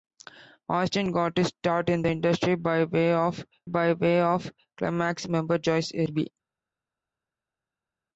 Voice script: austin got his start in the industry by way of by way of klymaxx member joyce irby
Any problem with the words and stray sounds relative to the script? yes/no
no